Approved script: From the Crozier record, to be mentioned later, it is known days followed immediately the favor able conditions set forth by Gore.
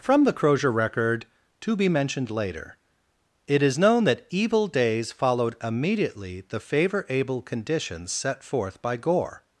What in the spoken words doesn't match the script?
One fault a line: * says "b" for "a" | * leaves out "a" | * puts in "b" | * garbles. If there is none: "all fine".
* puts in "that evil"